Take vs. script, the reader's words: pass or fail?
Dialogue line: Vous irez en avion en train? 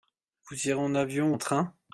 pass